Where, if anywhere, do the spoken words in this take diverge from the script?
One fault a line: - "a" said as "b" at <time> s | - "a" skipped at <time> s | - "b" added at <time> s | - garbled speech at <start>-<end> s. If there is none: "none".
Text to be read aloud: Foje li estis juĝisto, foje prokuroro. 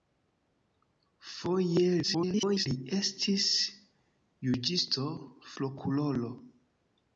- garbled speech at 2.0-2.7 s
- "foje" skipped at 5.1 s